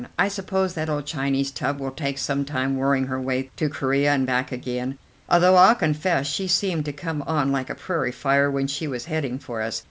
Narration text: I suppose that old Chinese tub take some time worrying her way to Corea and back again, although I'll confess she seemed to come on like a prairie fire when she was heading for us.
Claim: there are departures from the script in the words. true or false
true